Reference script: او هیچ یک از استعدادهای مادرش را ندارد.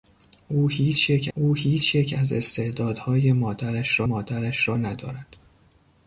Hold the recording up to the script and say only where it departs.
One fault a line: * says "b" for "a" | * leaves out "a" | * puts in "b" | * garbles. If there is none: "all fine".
* puts in "او هیچ یک"
* puts in "مادرش را"